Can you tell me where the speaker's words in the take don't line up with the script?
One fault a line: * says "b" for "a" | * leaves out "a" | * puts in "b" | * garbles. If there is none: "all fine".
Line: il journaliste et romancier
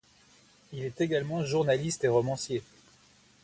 * puts in "est également"